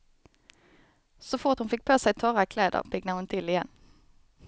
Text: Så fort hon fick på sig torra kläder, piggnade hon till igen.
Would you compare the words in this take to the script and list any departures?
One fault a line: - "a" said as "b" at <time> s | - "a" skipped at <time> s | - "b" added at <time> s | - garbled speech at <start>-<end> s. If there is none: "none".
none